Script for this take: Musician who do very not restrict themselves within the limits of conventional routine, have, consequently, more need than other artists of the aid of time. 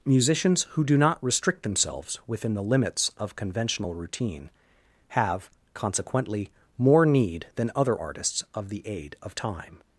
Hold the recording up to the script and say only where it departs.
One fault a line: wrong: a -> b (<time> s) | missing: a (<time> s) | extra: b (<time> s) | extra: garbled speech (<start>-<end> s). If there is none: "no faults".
wrong: Musician -> Musicians (0.1 s)
missing: very (1.0 s)